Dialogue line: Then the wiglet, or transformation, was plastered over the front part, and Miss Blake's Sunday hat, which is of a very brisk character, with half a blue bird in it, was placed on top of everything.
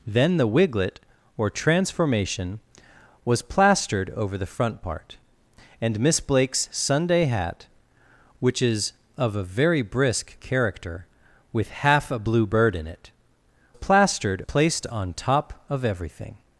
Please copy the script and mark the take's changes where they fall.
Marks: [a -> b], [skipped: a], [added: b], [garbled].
Then the wiglet, or transformation, was plastered over the front part, and Miss Blake's Sunday hat, which is of a very brisk character, with half a blue bird in it, [was -> plastered] placed on top of everything.